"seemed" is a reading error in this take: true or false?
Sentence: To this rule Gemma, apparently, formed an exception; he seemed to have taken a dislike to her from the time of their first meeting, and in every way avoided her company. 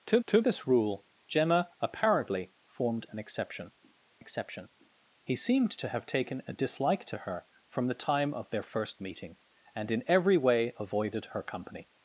false